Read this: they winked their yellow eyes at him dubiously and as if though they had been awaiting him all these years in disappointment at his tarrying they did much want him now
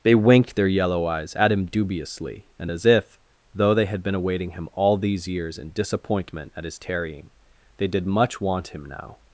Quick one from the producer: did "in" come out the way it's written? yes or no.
yes